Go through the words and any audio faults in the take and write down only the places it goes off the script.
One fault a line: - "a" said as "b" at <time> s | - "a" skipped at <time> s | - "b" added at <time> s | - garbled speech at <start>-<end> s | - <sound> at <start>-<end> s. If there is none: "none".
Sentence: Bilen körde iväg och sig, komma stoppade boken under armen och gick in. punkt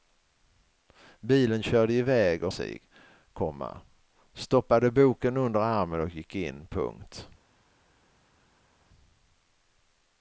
none